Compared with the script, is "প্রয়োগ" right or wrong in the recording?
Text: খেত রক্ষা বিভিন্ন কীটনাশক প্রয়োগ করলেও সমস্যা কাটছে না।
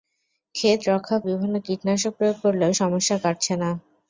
right